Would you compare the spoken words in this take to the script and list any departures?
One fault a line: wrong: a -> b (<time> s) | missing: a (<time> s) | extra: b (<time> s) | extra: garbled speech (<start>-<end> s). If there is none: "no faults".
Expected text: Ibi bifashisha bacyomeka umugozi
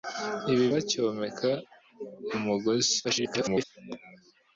missing: bifashisha (0.7 s)
extra: garbled speech (3.0-3.6 s)